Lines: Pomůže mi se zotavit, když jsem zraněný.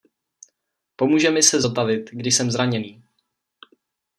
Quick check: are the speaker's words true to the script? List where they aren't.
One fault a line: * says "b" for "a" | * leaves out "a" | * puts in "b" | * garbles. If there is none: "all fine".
all fine